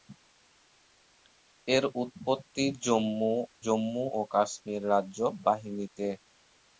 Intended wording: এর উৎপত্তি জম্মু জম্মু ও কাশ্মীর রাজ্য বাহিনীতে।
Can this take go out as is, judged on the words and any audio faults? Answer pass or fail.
pass